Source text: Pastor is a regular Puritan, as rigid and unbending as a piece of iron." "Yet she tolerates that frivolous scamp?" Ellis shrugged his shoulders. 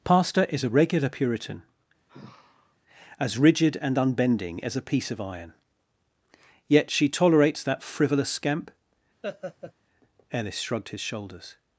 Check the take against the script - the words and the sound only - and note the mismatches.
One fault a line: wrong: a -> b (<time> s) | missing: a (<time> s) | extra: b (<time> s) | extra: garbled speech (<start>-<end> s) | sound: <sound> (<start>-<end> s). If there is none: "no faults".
sound: sigh (2.1-2.8 s)
sound: laugh (9.2-9.7 s)